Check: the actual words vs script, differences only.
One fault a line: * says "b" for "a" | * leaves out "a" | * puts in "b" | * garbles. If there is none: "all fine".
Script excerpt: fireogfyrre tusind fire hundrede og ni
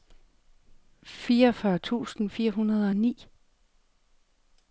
all fine